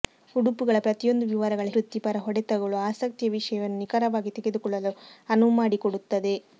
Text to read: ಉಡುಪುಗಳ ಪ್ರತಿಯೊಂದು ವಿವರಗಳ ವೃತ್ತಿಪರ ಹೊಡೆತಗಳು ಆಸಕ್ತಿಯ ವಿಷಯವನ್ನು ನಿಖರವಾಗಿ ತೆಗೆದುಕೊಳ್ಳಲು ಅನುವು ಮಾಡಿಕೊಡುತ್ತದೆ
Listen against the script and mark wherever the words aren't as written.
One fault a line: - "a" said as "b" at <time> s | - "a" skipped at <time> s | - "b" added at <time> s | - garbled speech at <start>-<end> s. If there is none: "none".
none